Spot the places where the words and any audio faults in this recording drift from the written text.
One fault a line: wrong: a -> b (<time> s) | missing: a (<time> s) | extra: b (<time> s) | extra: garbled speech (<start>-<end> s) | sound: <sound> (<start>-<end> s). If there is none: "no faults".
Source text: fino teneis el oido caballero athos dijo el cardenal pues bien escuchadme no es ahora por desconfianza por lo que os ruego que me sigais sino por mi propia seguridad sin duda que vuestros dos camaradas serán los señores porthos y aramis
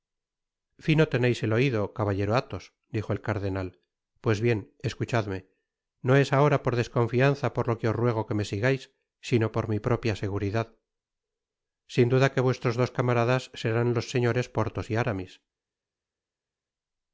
no faults